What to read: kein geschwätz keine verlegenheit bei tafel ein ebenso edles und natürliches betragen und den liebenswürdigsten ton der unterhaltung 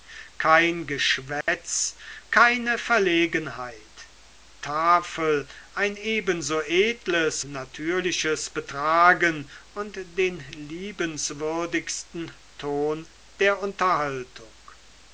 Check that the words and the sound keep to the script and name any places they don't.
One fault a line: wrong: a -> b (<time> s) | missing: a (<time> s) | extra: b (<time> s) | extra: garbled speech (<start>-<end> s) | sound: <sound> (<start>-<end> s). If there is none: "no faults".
sound: dropout (1.4-1.5 s)
missing: bei (4.1 s)
missing: und (7.4 s)